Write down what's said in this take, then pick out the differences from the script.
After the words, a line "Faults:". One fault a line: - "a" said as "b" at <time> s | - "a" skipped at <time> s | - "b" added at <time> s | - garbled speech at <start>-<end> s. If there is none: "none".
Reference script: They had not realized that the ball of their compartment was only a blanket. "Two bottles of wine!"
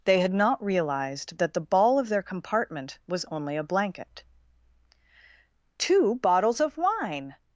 They had not realized that the ball of their compartment was only a blanket. "Two bottles of wine!"
Faults:
none